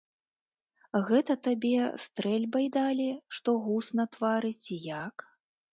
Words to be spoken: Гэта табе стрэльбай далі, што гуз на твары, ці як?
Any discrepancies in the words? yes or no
no